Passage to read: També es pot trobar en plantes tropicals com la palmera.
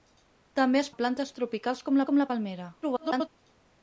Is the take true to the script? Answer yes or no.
no